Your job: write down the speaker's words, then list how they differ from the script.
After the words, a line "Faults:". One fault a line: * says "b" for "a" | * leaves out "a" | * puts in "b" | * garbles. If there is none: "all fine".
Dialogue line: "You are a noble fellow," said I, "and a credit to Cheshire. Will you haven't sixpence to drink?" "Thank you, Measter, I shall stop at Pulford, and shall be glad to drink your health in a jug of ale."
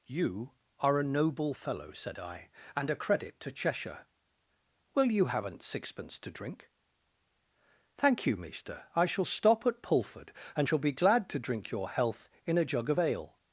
"You are a noble fellow," said I, "and a credit to Cheshire. Will you haven't sixpence to drink?" "Thank you, Measter, I shall stop at Pulford, and shall be glad to drink your health in a jug of ale."
Faults:
all fine